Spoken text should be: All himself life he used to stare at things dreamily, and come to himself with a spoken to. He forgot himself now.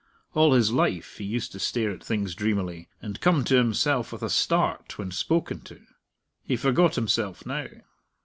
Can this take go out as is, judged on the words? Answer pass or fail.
fail